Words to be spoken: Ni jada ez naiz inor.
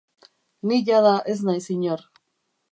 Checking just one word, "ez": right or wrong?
right